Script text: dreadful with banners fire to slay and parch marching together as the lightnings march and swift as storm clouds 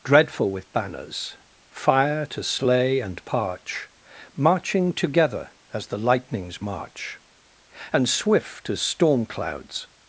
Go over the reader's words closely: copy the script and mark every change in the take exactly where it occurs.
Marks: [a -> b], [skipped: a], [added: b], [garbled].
dreadful with banners fire to slay and parch marching together as the lightnings march and swift as storm clouds